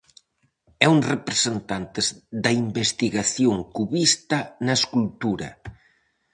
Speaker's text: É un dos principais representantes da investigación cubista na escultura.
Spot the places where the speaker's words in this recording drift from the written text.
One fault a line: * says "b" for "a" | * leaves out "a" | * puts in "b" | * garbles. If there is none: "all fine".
* leaves out "dos principais"